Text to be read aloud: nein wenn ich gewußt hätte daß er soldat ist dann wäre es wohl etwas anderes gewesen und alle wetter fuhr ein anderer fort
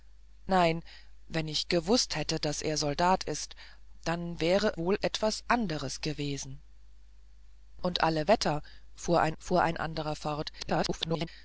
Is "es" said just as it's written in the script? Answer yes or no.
no